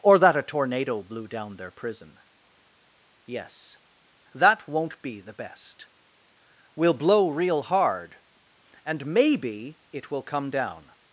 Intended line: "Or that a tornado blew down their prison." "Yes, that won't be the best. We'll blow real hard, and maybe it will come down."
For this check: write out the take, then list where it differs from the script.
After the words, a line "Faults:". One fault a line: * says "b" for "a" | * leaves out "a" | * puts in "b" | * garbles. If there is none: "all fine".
"Or that a tornado blew down their prison." "Yes, that won't be the best. We'll blow real hard, and maybe it will come down."
Faults:
all fine